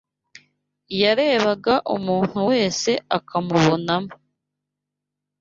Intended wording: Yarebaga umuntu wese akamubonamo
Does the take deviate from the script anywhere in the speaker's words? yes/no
no